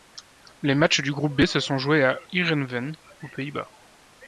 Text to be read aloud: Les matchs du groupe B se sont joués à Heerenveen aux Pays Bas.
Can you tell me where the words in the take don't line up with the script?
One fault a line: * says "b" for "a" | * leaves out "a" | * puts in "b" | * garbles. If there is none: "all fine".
all fine